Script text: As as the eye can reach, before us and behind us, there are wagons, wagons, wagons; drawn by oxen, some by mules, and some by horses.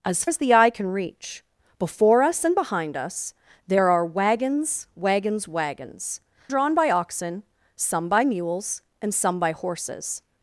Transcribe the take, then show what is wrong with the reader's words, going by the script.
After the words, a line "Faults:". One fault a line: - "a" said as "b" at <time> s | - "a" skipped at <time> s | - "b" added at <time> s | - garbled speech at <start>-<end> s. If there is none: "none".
As as the eye can reach, before us and behind us, there are wagons, wagons, wagons; drawn by oxen, some by mules, and some by horses.
Faults:
none